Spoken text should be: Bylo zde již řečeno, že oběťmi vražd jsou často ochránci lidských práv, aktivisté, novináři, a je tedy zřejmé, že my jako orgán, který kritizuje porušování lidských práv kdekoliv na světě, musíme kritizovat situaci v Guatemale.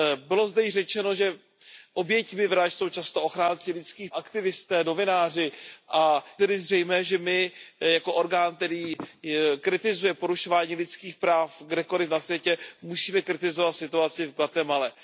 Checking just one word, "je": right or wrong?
wrong